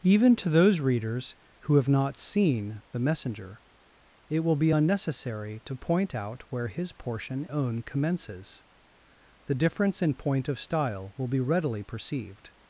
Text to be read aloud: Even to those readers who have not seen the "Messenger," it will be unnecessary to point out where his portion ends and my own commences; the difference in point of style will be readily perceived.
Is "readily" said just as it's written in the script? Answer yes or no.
yes